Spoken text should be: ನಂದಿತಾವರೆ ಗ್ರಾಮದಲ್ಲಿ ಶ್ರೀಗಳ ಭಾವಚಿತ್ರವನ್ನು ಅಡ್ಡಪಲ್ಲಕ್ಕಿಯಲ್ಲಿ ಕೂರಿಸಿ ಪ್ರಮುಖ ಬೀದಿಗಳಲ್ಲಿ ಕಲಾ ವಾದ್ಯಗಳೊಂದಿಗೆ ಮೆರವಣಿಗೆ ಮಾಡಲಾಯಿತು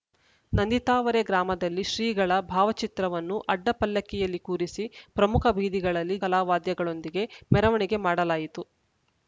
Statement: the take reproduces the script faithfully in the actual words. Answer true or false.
true